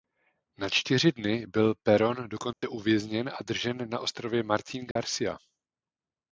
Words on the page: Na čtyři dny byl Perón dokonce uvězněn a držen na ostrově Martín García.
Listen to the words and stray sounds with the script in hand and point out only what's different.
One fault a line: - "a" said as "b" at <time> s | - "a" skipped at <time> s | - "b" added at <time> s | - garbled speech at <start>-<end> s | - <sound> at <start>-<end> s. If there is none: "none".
- dropout at 2.5-2.6 s
- dropout at 4.9-5.0 s